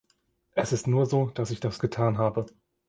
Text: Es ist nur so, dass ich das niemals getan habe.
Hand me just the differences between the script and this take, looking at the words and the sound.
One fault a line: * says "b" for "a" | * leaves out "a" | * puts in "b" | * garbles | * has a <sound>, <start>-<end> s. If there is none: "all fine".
* leaves out "niemals"